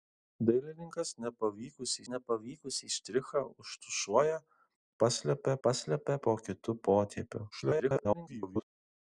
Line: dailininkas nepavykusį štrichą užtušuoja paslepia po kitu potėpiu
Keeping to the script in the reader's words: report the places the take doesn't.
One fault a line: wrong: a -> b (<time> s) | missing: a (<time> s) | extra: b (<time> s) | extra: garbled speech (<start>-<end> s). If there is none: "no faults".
extra: nepavykusį (2.1 s)
extra: paslepia (5.7 s)
extra: garbled speech (7.5-8.6 s)